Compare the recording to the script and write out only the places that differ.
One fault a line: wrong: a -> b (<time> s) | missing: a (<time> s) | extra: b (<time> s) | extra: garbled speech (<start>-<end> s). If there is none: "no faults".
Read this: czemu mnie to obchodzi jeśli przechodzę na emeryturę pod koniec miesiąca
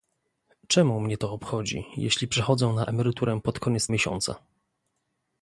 no faults